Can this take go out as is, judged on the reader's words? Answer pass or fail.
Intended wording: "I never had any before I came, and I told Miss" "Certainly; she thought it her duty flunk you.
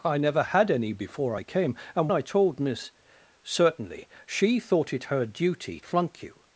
pass